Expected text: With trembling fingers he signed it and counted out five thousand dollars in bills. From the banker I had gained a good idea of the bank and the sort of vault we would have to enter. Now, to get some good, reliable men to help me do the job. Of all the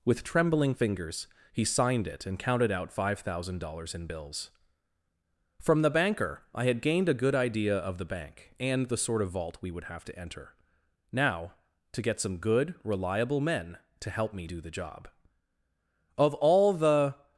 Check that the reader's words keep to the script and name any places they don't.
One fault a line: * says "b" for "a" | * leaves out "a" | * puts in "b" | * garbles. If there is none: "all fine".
all fine